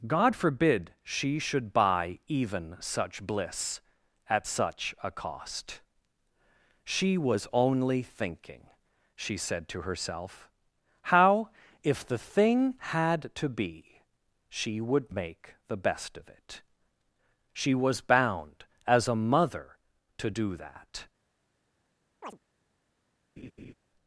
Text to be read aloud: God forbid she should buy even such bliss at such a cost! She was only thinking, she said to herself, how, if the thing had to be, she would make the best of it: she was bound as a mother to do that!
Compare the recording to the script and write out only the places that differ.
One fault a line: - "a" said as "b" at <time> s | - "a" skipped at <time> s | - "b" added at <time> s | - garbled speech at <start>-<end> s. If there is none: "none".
none